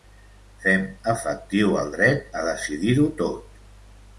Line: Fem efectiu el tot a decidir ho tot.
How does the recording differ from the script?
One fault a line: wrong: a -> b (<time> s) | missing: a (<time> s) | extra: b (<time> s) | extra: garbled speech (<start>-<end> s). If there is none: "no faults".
wrong: tot -> dret (2.0 s)